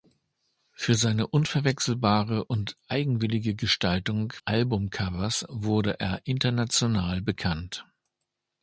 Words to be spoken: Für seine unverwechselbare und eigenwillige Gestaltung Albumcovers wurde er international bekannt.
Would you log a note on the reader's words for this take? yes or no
no